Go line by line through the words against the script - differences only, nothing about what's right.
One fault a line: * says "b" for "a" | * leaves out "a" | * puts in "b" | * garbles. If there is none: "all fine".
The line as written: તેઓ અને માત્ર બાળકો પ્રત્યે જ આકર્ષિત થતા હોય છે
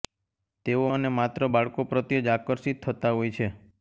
all fine